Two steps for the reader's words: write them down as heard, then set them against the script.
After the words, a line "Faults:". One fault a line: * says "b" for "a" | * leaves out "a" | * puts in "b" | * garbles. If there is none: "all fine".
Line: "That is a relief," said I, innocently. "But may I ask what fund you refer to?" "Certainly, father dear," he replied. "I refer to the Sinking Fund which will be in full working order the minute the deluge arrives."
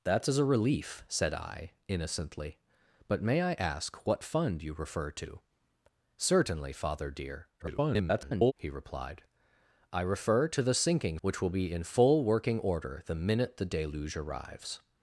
"That is a relief," said I, innocently. "But may I ask what fund you refer to?" "Certainly, father dear," [garbled] he replied. "I refer to the Sinking Which will be in full working order the minute the deluge arrives."
Faults:
* garbles
* leaves out "Fund"